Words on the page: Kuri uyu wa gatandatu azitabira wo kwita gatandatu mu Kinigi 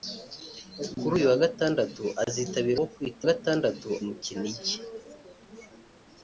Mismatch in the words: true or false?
false